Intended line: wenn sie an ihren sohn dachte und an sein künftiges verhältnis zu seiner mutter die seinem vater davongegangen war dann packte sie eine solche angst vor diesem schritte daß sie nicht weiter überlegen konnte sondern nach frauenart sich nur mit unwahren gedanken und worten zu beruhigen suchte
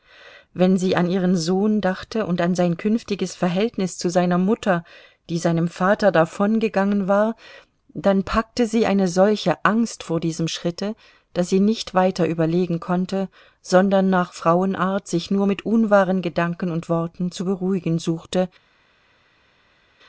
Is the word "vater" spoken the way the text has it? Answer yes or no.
yes